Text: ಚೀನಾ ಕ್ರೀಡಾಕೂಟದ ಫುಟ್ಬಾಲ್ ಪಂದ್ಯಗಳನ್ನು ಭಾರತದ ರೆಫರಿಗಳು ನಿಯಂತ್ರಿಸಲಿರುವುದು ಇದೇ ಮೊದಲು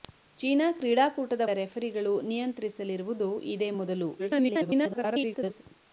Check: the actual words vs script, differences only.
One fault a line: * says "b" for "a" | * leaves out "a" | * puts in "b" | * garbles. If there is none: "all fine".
* leaves out "ಫುಟ್ಬಾಲ್ ಪಂದ್ಯಗಳನ್ನು ಭಾರತದ"
* garbles